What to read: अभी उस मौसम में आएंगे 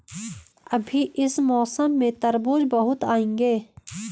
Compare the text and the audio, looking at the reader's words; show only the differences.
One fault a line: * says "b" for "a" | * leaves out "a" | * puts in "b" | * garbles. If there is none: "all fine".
* says "इस" for "उस"
* puts in "तरबूज बहुत"